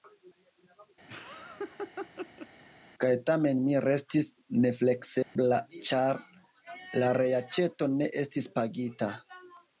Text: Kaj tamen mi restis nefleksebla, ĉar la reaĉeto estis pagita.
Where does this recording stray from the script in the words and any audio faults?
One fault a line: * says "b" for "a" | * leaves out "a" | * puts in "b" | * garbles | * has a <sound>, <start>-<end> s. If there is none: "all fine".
* has a laugh, 1.1-2.5 s
* has a dropout, 5.2-5.4 s
* puts in "ne"